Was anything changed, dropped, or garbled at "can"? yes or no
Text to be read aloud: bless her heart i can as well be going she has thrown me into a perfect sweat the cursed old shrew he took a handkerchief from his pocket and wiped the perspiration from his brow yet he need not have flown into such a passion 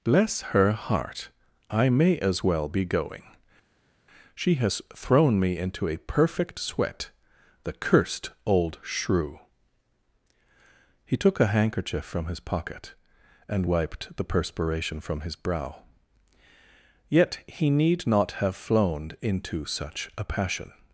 yes